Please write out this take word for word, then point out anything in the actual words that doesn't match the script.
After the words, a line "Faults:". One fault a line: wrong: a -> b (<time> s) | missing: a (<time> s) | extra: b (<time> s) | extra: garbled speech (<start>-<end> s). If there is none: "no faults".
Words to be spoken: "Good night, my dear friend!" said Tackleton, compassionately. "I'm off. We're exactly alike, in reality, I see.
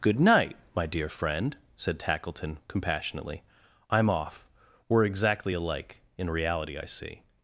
"Good night, my dear friend!" said Tackleton, compassionately. "I'm off. We're exactly alike, in reality, I see.
Faults:
no faults